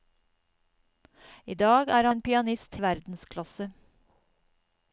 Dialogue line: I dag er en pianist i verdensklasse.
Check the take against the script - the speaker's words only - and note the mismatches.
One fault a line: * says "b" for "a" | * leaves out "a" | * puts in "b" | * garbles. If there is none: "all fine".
all fine